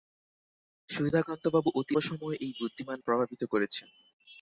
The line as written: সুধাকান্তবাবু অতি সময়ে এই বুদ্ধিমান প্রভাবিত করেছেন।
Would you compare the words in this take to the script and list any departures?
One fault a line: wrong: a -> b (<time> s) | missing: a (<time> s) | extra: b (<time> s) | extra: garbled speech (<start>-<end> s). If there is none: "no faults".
no faults